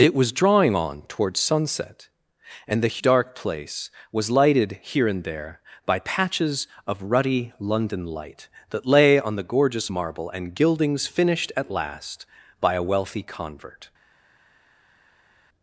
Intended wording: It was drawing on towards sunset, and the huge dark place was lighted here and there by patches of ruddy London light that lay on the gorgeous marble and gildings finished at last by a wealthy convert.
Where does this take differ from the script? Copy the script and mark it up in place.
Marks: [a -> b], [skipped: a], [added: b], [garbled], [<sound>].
It was drawing on towards sunset, and the [skipped: huge] dark place was lighted here and there by patches of ruddy London light that lay on the gorgeous marble and gildings finished at last by a wealthy convert.